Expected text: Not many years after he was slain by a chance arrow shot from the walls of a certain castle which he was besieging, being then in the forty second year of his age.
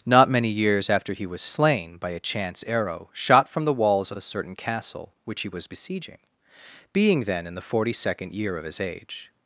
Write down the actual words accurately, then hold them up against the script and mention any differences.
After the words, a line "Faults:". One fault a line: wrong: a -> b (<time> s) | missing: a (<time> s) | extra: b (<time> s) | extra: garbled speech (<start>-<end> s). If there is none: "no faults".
Not many years after he was slain by a chance arrow shot from the walls of a certain castle which he was besieging, being then in the forty second year of his age.
Faults:
no faults